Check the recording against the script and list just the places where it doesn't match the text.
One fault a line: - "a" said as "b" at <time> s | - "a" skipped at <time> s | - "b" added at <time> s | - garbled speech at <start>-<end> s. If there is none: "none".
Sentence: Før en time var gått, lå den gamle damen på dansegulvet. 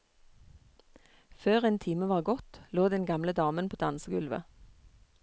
none